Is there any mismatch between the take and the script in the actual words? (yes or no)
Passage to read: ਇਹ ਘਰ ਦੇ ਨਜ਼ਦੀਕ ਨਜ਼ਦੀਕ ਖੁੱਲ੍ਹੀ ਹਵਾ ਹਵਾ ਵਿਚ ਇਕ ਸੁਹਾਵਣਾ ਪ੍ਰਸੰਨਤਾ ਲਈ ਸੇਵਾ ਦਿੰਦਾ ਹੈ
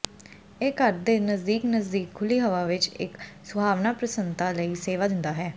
yes